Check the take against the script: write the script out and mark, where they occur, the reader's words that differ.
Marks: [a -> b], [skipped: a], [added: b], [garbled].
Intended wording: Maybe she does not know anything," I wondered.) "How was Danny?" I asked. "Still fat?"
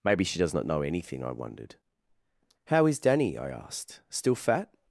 Maybe she does not know anything," I wondered.) "How [was -> is] Danny?" I asked. "Still fat?"